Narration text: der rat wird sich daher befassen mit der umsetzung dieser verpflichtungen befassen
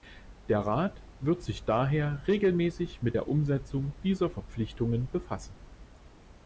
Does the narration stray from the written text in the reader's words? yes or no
yes